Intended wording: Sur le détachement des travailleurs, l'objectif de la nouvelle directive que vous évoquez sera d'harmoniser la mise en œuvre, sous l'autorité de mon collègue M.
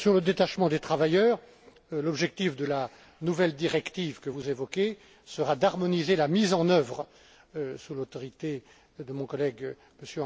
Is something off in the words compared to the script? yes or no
no